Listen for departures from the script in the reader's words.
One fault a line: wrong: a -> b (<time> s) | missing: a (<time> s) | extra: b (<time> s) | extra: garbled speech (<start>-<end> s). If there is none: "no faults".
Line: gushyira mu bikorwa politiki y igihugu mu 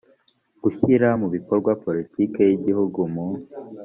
no faults